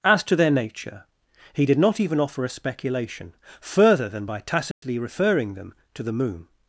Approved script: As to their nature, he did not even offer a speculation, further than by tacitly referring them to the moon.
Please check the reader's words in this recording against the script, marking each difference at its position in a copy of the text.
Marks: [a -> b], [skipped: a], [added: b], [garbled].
As to their nature, he did not even offer a speculation, further than by tacitly referring them to the moon.